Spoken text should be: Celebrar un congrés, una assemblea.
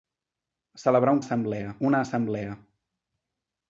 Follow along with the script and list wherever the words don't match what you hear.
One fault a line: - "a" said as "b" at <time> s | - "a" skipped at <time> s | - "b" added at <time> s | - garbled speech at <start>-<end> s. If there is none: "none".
- "congrés" said as "assemblea" at 1.2 s